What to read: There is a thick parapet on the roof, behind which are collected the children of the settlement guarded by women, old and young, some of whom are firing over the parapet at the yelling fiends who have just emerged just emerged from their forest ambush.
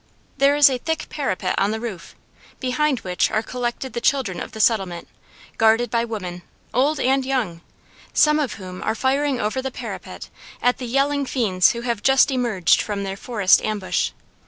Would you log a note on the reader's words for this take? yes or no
yes